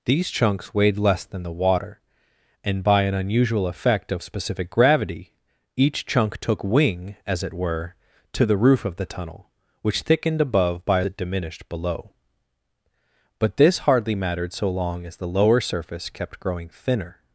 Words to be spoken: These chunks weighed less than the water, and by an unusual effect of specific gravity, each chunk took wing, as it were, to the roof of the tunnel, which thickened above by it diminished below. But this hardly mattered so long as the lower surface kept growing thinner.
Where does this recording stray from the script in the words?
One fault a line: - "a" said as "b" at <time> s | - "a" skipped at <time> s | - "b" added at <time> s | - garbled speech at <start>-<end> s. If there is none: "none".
none